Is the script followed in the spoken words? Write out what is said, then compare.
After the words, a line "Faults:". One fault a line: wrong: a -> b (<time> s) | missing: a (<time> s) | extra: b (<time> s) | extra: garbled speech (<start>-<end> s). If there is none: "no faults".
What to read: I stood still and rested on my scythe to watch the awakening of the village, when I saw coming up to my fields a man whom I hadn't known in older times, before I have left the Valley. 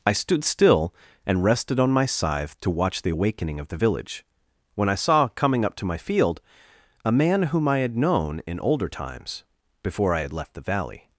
I stood still and rested on my scythe to watch the awakening of the village, when I saw coming up to my field a man whom I had known in older times, before I had left the Valley.
Faults:
wrong: fields -> field (6.0 s)
wrong: hadn't -> had (7.8 s)
wrong: have -> had (10.2 s)